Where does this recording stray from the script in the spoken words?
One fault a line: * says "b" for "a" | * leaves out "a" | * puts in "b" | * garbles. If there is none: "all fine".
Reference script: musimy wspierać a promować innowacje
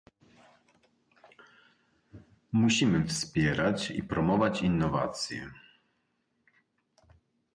* says "i" for "a"